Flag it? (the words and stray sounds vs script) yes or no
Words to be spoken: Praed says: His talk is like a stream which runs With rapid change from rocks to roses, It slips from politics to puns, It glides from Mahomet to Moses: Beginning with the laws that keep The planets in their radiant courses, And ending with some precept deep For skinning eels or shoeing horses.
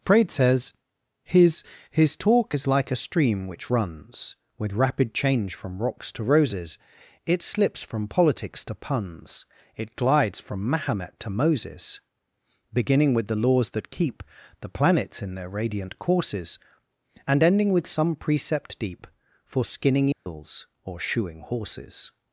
yes